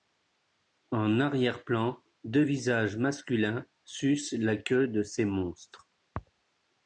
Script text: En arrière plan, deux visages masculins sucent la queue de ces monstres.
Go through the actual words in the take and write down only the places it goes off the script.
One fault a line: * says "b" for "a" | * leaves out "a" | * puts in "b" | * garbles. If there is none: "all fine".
all fine